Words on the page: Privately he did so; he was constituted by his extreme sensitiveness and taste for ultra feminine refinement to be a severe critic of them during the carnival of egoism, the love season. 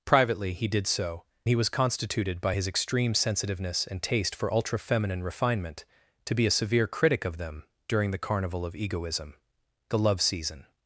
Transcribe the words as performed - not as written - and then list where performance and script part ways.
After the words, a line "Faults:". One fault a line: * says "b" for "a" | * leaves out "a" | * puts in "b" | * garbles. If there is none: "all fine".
Privately he did so; he was constituted by his extreme sensitiveness and taste for ultra feminine refinement to be a severe critic of them during the carnival of egoism, the love season.
Faults:
all fine